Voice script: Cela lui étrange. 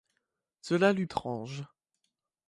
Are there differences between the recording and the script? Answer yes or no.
no